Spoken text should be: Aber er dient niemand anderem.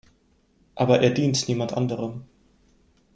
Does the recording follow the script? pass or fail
pass